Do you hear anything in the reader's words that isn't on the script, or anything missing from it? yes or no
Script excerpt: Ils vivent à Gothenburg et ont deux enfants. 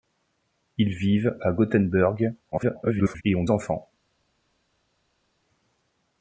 yes